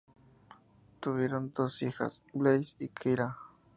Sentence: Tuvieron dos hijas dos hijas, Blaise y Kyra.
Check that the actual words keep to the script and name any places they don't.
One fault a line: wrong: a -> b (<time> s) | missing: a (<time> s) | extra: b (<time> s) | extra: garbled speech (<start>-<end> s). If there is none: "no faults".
missing: dos hijas (2.2 s)